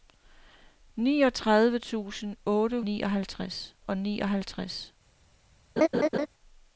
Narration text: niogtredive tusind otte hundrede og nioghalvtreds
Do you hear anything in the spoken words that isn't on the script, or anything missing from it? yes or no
yes